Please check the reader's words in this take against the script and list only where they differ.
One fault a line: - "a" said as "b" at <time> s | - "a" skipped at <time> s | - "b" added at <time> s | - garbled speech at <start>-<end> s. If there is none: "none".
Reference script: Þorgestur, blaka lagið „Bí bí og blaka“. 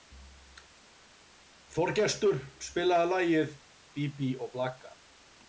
- "blaka" said as "spilaðu" at 2.7 s